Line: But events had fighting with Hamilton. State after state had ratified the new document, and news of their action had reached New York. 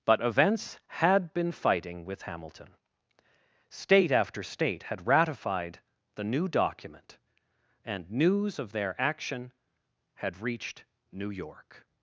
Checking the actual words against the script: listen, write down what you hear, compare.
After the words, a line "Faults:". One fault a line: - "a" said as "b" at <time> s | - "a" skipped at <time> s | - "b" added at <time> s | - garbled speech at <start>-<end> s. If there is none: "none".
But events had been fighting with Hamilton. State after state had ratified the new document, and news of their action had reached New York.
Faults:
- "been" added at 1.3 s